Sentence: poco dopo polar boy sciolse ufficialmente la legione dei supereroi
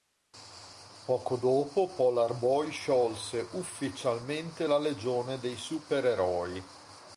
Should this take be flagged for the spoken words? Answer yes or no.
no